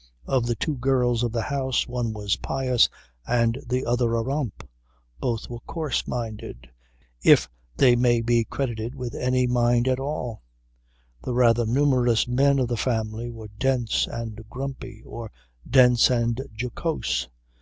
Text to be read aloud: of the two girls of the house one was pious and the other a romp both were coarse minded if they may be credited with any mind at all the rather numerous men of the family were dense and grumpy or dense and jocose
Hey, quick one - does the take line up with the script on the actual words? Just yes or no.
yes